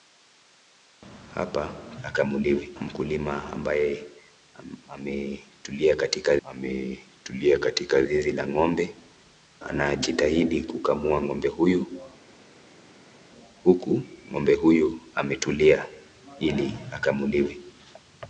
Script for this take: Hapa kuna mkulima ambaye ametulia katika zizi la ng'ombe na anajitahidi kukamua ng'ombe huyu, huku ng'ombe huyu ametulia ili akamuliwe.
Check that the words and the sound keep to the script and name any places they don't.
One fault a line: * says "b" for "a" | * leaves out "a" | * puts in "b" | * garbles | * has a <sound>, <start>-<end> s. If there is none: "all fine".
* says "akamuliwe" for "kuna"
* puts in "ametulia katika"
* leaves out "na"